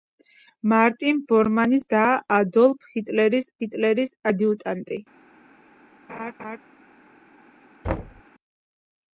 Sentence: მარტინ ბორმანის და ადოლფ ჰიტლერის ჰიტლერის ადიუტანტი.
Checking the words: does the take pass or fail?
pass